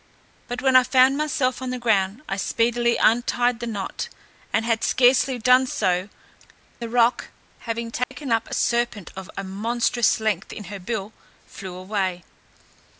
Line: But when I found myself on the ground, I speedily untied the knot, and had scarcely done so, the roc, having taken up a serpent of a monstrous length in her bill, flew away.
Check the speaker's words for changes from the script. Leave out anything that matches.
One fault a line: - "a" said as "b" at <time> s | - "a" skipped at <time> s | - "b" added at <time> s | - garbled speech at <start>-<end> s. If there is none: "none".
none